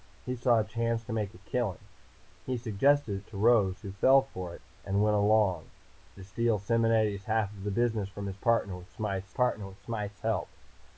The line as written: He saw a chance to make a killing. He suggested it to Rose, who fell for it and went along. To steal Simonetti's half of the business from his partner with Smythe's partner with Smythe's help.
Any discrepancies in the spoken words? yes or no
no